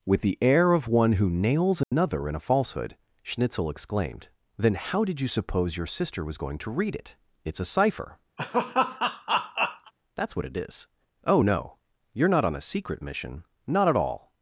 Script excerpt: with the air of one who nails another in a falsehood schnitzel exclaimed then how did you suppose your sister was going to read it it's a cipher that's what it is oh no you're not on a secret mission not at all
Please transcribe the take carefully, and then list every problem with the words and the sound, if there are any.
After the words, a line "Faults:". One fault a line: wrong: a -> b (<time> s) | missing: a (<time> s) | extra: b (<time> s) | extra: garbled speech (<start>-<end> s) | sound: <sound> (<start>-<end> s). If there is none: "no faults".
with the air of one who nails another in a falsehood schnitzel exclaimed then how did you suppose your sister was going to read it it's a cipher that's what it is oh no you're not on a secret mission not at all
Faults:
sound: dropout (1.8-1.9 s)
sound: laugh (8.4-9.9 s)